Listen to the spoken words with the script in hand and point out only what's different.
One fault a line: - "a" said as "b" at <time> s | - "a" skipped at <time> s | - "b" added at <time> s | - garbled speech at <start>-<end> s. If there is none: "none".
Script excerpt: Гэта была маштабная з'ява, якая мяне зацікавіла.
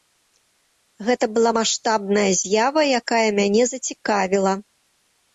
none